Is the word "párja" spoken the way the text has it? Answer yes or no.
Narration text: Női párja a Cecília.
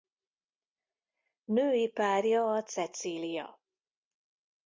yes